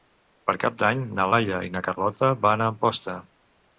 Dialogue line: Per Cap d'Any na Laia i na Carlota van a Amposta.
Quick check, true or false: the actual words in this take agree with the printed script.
true